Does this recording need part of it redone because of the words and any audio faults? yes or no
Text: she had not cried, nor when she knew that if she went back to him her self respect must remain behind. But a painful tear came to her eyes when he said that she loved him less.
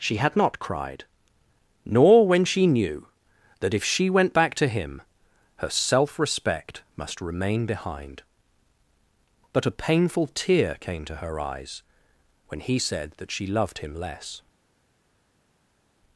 no